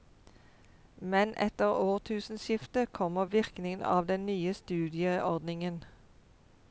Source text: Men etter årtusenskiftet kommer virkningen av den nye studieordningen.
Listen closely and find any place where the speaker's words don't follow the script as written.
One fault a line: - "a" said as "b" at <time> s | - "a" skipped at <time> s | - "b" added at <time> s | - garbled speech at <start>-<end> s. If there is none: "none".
none